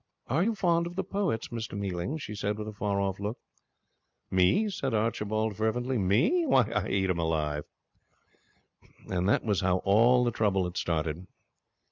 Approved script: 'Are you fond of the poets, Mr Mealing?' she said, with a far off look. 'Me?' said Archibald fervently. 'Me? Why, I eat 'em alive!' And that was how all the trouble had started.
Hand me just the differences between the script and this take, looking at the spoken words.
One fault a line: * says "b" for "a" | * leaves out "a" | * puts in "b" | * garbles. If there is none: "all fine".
all fine